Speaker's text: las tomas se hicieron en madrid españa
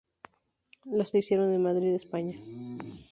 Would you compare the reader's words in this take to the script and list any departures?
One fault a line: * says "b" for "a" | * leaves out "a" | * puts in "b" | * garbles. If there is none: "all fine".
* leaves out "tomas"